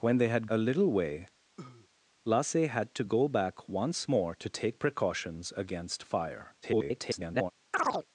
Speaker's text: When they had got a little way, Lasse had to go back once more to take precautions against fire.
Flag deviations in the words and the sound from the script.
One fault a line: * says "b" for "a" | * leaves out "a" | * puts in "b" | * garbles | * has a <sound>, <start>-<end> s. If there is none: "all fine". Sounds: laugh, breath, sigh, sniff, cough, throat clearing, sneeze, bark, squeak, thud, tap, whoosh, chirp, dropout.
* leaves out "got"
* has a cough, 1.6-1.9 s
* garbles
* has a chirp, 7.7-8.1 s